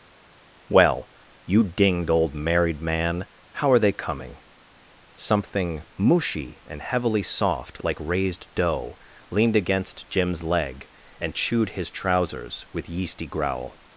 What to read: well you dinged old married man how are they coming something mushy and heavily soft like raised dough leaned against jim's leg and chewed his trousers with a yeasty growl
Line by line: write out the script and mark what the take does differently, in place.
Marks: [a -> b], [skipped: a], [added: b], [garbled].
well you dinged old married man how are they coming something mushy and heavily soft like raised dough leaned against jim's leg and chewed his trousers with [skipped: a] yeasty growl